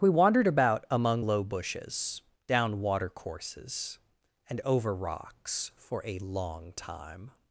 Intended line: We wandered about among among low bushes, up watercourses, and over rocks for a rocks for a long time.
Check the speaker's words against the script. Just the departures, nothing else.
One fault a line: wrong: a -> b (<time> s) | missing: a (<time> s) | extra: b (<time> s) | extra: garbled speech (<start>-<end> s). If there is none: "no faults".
missing: among (1.2 s)
wrong: up -> down (2.5 s)
missing: rocks for a (6.2 s)